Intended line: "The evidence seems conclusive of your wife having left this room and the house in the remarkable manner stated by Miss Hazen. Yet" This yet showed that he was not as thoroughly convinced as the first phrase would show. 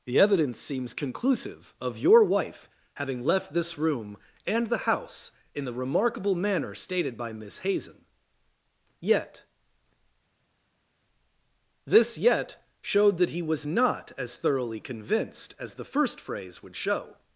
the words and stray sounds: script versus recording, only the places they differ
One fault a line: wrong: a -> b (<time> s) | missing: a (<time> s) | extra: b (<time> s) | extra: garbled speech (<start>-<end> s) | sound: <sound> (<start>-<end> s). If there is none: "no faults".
no faults